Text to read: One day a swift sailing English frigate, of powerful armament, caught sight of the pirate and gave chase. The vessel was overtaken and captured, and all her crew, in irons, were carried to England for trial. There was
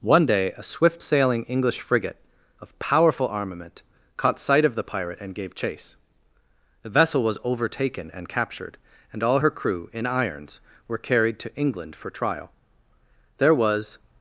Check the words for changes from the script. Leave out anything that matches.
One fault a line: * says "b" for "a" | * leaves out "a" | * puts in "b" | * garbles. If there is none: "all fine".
all fine